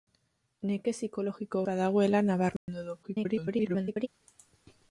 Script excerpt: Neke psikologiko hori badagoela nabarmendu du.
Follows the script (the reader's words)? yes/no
no